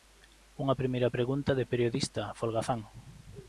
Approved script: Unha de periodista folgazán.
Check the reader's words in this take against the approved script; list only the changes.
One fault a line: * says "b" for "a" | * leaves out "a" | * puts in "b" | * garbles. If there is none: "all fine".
* puts in "primeira pregunta"